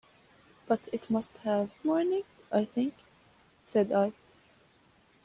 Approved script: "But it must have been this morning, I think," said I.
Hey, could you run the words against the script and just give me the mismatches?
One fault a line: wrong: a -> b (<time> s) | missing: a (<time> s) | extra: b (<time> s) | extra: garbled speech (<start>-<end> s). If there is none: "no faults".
missing: been this (1.7 s)